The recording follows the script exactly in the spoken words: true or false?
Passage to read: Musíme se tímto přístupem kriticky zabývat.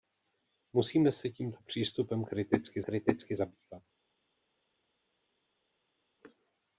false